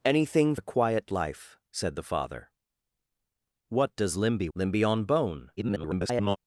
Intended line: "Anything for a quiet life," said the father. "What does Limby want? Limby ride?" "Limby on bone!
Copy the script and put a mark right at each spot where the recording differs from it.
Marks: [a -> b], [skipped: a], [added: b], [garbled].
"Anything [skipped: for] a quiet life," said the father. "What does Limby [skipped: want? Limby ride?"] "Limby on bone! [garbled]